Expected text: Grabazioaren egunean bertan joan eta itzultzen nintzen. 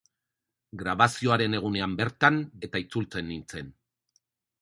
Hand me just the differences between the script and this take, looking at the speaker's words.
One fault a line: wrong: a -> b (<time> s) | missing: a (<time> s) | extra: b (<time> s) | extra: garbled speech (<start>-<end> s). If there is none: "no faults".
missing: joan (2.4 s)